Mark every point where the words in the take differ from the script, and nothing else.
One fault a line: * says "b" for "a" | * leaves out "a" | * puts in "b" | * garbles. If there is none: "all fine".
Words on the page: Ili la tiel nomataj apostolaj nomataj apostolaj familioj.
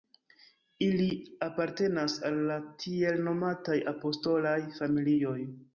* puts in "apartenas al"
* leaves out "nomataj apostolaj"